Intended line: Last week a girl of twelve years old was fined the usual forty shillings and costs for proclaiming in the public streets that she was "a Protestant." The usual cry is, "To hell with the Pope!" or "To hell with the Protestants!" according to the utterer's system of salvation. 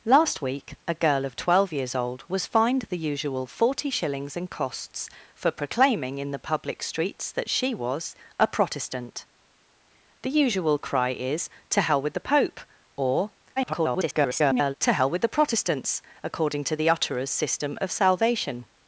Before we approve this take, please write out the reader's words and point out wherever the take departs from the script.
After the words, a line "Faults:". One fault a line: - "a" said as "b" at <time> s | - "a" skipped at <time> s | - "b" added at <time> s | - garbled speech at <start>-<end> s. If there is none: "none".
Last week a girl of twelve years old was fined the usual forty shillings and costs for proclaiming in the public streets that she was "a Protestant." The usual cry is, "To hell with the Pope!" or [garbled] "To hell with the Protestants!" according to the utterer's system of salvation.
Faults:
- garbled speech at 13.6-14.7 s